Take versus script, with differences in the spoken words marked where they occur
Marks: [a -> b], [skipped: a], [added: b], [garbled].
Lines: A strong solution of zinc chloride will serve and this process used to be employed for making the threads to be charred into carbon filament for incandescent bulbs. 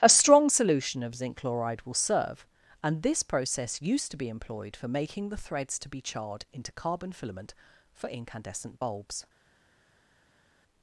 A strong solution of zinc chloride will serve and this process used to be employed for making the threads to be charred into carbon filament for incandescent bulbs.